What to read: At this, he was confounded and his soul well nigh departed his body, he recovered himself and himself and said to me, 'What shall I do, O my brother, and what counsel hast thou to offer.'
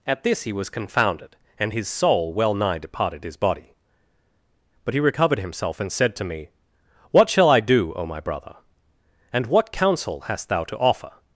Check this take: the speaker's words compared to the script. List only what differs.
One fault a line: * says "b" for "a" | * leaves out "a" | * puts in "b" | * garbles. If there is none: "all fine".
* puts in "but"
* leaves out "himself and"